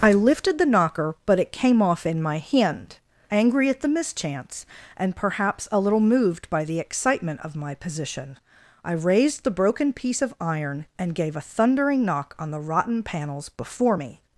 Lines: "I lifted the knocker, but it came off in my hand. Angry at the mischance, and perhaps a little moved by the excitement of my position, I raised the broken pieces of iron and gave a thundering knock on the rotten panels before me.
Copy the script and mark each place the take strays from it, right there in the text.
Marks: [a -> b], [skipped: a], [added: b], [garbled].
"I lifted the knocker, but it came off in my hand. Angry at the mischance, and perhaps a little moved by the excitement of my position, I raised the broken [pieces -> piece] of iron and gave a thundering knock on the rotten panels before me.